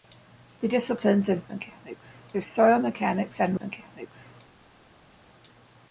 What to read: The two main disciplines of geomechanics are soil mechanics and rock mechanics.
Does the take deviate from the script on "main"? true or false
true